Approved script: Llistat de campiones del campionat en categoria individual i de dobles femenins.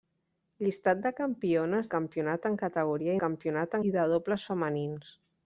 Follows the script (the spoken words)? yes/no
no